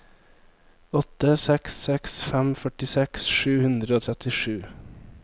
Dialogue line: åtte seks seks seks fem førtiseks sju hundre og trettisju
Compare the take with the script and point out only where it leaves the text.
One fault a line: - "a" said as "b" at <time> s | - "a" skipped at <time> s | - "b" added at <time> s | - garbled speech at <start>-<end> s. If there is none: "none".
- "seks" skipped at 2.2 s